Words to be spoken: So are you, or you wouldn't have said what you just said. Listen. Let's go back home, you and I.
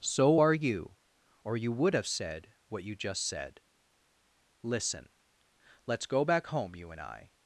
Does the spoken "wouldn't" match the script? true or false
false